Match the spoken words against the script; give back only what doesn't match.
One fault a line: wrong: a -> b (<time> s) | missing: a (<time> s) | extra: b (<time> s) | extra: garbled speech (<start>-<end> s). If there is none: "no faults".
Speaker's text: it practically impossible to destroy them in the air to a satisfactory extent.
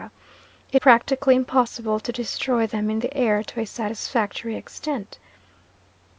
no faults